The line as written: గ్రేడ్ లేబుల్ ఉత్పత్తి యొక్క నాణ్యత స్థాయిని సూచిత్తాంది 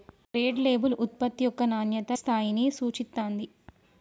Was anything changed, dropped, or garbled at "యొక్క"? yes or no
no